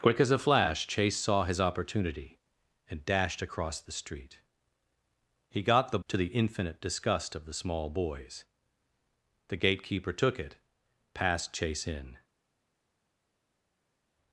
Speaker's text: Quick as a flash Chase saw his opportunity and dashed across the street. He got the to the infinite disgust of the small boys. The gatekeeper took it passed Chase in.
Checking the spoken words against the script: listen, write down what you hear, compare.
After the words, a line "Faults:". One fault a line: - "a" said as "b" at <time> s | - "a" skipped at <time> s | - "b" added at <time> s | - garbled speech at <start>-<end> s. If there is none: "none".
Quick as a flash Chase saw his opportunity and dashed across the street. He got the to the infinite disgust of the small boys. The gatekeeper took it passed Chase in.
Faults:
none